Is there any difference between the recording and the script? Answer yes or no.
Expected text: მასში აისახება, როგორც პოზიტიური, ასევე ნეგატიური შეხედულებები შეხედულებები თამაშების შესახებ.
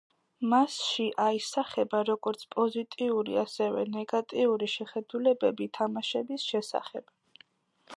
yes